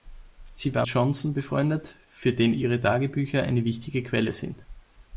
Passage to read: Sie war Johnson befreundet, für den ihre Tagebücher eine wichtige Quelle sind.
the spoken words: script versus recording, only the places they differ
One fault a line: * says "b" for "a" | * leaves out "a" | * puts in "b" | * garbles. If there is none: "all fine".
all fine